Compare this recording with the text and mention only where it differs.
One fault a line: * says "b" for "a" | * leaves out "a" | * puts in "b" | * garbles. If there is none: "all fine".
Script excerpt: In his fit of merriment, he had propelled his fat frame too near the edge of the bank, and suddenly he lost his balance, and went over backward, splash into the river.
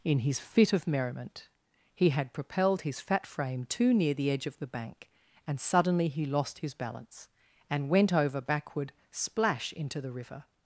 all fine